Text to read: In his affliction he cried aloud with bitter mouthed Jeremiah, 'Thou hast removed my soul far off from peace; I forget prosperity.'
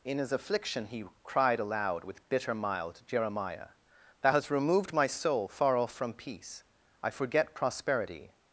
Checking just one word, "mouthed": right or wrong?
wrong